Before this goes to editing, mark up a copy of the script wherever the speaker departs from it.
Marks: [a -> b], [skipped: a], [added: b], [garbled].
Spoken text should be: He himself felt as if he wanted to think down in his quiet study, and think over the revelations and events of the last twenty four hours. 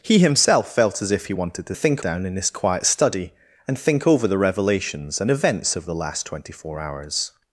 He himself felt as if he wanted to think down in his quiet study, and think over the revelations and events of the last twenty four hours.